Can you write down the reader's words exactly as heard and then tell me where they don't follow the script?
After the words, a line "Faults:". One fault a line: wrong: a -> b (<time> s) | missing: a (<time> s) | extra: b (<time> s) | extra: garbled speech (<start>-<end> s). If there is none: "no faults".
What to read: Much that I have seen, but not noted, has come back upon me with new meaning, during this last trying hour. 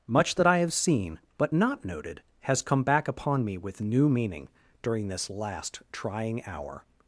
Much that I have seen, but not noted, has come back upon me with new meaning, during this last trying hour.
Faults:
no faults